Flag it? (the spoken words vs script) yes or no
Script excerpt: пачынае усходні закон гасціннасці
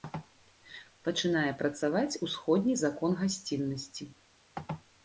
yes